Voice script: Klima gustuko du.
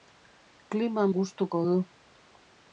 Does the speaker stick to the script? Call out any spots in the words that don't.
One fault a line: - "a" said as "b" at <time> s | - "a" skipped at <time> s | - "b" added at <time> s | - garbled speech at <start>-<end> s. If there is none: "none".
none